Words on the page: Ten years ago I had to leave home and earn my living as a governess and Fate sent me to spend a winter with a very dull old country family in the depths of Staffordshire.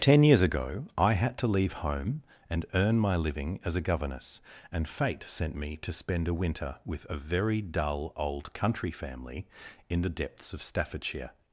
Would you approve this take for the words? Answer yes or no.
yes